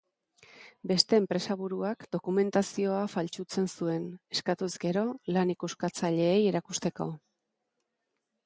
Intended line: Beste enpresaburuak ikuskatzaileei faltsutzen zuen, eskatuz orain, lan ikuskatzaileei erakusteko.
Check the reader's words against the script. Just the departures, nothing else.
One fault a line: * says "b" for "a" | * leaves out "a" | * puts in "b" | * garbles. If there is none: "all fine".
* says "dokumentazioa" for "ikuskatzaileei"
* says "gero" for "orain"